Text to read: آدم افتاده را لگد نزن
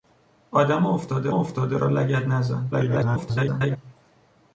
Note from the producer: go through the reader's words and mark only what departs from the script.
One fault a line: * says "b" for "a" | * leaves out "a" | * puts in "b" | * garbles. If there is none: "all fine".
* puts in "افتاده"
* garbles